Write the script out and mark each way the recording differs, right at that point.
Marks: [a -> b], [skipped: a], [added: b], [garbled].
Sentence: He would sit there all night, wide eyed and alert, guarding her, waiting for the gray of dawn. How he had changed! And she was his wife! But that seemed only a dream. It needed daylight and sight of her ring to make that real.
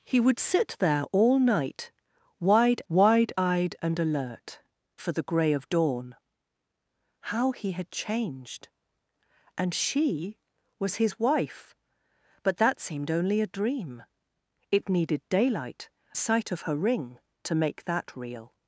He would sit there all night, wide [added: wide] eyed and alert, [skipped: guarding her, waiting] for the gray of dawn. How he had changed! And she was his wife! But that seemed only a dream. It needed daylight [skipped: and] sight of her ring to make that real.